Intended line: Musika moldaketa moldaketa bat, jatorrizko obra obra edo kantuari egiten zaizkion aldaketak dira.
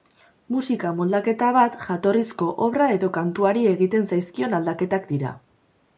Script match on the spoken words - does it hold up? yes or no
no